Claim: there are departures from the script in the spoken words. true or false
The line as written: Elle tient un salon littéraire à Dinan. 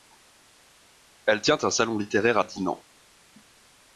false